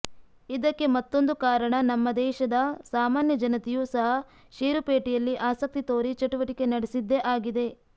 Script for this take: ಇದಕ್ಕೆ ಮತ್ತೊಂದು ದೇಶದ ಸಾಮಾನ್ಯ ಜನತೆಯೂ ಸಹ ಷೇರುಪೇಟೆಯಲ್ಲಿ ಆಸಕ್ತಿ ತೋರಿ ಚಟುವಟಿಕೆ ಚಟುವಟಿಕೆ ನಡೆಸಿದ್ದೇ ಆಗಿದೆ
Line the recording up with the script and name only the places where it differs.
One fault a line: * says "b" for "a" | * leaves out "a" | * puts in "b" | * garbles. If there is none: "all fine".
* puts in "ಕಾರಣ ನಮ್ಮ"
* leaves out "ಚಟುವಟಿಕೆ"